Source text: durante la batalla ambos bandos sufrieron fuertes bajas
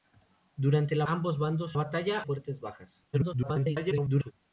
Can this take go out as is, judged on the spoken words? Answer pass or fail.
fail